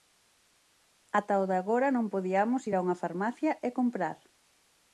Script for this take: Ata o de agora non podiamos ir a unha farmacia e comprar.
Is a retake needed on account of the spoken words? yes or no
no